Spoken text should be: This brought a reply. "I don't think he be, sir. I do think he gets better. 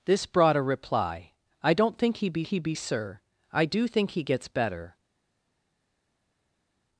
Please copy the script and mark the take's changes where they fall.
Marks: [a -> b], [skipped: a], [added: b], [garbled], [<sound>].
This brought a reply. "I don't think he be, [added: he be] sir. I do think he gets better.